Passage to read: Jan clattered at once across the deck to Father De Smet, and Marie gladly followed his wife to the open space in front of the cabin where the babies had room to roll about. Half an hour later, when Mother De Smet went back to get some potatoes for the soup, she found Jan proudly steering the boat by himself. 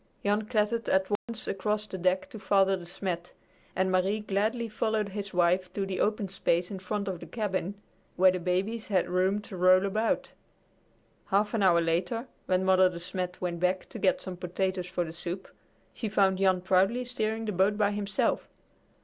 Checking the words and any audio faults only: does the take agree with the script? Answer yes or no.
no